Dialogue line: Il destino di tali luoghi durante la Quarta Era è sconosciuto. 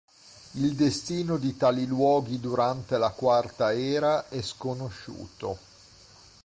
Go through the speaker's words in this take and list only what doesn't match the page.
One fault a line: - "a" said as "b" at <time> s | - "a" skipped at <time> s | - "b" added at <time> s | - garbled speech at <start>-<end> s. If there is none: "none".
none